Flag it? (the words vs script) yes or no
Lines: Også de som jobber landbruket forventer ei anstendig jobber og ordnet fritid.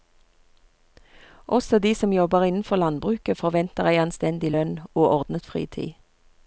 yes